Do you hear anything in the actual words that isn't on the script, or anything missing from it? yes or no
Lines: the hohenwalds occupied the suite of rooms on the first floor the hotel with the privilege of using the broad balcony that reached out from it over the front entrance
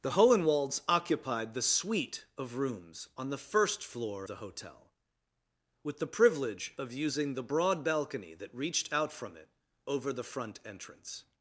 no